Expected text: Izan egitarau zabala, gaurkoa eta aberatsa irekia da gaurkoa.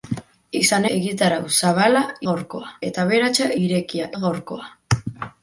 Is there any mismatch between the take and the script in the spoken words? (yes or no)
no